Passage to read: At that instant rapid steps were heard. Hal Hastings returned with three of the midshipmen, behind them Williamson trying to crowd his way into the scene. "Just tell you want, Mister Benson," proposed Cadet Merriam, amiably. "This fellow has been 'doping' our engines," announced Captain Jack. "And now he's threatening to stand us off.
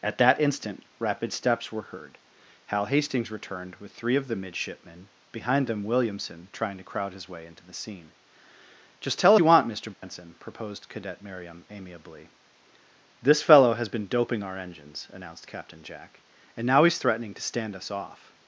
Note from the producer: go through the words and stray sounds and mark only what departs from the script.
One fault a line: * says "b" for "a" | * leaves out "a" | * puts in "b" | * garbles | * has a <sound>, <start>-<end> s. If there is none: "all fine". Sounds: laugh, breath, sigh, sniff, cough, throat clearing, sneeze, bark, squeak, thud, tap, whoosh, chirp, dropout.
* has a dropout, 9.9-10.0 s